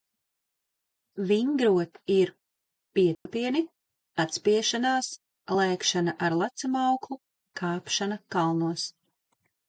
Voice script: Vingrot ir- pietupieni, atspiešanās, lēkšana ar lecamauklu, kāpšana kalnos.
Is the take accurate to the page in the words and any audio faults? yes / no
no